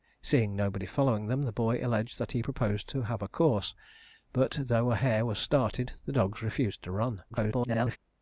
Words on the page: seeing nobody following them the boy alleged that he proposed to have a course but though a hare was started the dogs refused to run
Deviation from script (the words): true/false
true